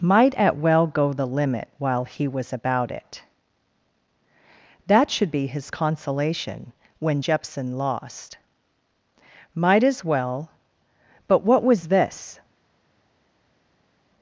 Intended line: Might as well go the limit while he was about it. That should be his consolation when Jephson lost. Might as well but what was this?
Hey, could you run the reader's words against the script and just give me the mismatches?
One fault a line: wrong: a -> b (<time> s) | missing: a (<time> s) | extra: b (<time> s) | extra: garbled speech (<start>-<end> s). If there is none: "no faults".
wrong: as -> at (0.3 s)